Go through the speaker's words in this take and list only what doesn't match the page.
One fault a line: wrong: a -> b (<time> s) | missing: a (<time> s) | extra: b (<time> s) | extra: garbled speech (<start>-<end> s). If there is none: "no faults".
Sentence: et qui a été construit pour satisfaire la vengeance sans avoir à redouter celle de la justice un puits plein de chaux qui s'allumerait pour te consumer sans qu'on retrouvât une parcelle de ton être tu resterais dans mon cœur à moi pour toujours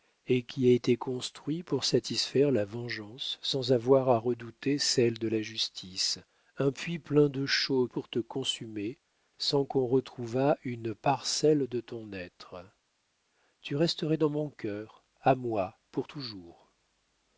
missing: qui s'allumerait (7.9 s)